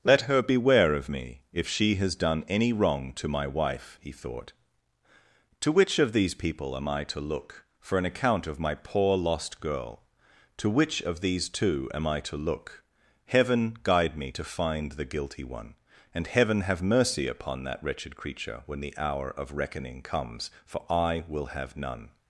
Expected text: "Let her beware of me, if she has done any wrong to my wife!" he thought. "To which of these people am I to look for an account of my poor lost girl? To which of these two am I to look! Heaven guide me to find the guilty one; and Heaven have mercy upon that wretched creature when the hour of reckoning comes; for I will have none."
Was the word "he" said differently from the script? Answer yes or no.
no